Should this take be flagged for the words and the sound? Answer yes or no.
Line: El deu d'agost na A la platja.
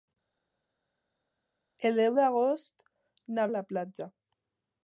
no